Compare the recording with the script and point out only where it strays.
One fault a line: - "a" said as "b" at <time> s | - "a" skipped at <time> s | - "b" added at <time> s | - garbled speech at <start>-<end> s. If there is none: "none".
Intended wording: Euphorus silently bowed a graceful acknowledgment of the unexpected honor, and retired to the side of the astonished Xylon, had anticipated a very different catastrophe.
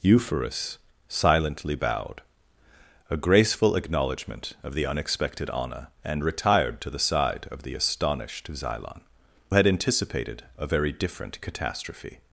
none